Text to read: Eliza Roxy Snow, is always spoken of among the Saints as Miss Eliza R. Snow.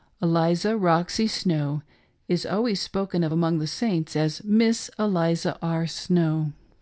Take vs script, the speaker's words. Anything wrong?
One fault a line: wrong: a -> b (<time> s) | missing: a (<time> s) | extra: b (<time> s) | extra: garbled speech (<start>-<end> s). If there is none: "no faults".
no faults